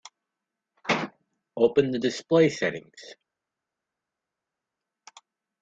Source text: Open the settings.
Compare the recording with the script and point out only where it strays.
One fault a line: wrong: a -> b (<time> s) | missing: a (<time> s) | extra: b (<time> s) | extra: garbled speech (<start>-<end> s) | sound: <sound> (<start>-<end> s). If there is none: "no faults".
extra: display (2.0 s)